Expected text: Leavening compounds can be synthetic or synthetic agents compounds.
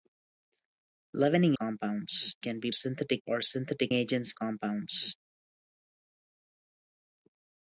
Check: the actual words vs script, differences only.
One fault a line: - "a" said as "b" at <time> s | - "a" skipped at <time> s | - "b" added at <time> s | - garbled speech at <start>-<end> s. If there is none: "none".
none